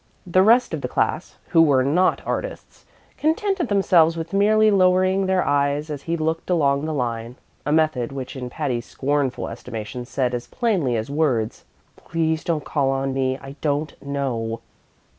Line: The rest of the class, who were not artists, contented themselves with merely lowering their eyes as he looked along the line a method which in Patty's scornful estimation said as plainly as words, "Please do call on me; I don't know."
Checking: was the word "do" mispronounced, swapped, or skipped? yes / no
yes